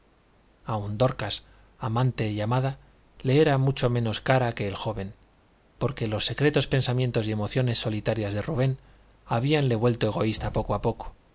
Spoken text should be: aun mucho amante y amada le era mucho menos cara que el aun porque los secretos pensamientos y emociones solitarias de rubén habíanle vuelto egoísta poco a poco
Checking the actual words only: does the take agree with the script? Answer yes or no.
no